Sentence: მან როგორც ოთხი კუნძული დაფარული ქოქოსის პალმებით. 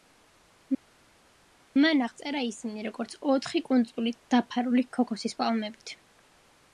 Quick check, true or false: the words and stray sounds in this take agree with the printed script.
false